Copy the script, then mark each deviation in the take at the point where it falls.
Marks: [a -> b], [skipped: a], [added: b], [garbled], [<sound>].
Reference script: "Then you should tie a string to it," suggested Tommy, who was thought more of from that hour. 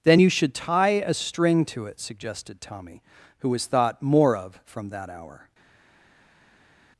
"Then you should tie a string to it," suggested Tommy, who was thought more of from that hour.